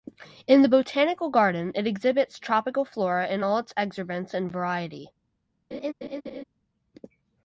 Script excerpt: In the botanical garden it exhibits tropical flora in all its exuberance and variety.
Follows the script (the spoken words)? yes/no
yes